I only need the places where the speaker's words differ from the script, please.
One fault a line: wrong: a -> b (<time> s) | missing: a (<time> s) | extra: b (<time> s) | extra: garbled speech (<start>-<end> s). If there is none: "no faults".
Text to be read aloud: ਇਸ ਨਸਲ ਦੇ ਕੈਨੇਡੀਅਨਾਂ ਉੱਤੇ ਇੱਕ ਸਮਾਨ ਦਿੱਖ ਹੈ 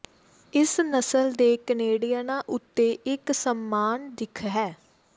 no faults